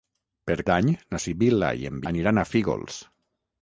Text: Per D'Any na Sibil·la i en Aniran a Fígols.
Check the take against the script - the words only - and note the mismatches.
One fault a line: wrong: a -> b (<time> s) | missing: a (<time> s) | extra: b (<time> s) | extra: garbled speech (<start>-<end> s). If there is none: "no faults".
no faults